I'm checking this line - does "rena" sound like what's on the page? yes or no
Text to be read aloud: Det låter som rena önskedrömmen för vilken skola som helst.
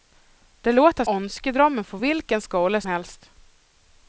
no